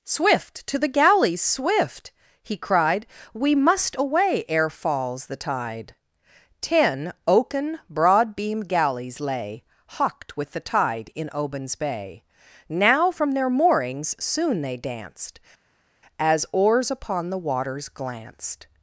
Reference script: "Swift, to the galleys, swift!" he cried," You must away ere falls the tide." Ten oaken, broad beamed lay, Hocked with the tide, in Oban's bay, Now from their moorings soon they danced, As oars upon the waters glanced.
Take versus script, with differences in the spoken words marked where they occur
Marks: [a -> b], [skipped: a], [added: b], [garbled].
"Swift, to the galleys, swift!" he cried," [You -> We] must away ere falls the tide." Ten oaken, broad beamed [added: galleys] lay, Hocked with the tide, in Oban's bay, Now from their moorings soon they danced, As oars upon the waters glanced.